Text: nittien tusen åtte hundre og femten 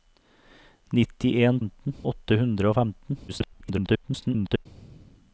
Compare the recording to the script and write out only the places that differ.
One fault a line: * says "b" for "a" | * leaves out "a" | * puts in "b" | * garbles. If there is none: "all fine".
* says "femten" for "tusen"
* garbles